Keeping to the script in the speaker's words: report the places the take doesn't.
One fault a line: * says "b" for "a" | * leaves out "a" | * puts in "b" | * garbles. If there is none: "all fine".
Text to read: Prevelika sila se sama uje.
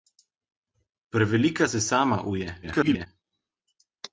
* leaves out "sila"
* garbles